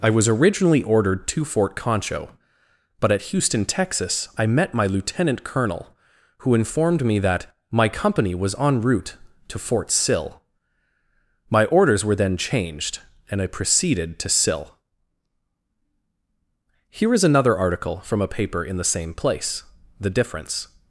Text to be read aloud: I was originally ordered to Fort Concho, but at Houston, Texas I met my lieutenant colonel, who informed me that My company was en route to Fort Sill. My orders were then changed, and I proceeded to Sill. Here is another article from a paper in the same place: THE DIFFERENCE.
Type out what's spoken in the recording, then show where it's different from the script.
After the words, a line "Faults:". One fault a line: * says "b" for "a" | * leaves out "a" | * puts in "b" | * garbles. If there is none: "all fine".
I was originally ordered to Fort Concho, but at Houston, Texas I met my lieutenant colonel, who informed me that My company was en route to Fort Sill. My orders were then changed, and I proceeded to Sill. Here is another article from a paper in the same place: THE DIFFERENCE.
Faults:
all fine